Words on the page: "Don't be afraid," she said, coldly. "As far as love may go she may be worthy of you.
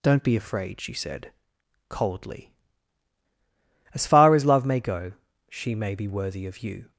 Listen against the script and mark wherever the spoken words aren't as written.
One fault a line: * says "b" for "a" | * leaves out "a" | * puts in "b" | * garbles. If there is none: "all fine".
all fine